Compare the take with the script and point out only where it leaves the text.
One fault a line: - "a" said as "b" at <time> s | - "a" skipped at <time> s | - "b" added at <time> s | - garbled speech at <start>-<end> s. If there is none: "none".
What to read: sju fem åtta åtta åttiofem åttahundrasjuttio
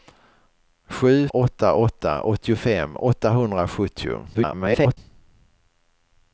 - "fem" skipped at 1.3 s
- garbled speech at 4.3-5.0 s